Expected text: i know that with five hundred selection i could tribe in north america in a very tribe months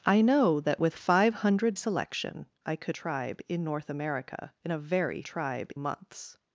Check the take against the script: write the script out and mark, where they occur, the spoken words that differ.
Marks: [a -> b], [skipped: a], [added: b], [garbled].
i know that with five hundred selection i could tribe in north america in a very tribe months